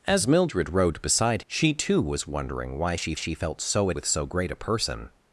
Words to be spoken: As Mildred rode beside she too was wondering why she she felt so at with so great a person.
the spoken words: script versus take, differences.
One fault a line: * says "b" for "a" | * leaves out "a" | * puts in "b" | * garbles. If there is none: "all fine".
all fine